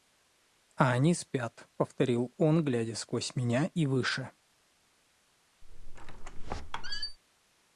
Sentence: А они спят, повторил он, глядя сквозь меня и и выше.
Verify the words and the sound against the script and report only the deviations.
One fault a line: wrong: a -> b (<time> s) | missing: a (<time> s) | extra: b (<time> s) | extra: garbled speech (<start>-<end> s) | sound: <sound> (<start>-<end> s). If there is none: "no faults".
missing: и (3.8 s)
sound: squeak (5.6-7.2 s)